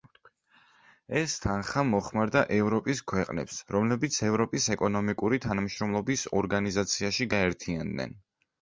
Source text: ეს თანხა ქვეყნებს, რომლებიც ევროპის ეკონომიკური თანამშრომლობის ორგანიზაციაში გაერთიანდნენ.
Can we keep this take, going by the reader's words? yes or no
no